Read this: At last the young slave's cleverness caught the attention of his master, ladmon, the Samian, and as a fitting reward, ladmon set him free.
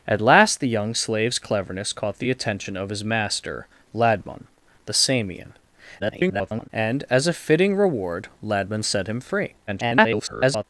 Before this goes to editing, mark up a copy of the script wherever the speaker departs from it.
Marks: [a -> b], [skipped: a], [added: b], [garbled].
At last the young slave's cleverness caught the attention of his master, ladmon, the Samian, [garbled] and as a fitting reward, ladmon set him free. [garbled]